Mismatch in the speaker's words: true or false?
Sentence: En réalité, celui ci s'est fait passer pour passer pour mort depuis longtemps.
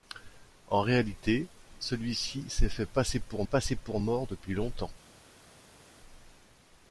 false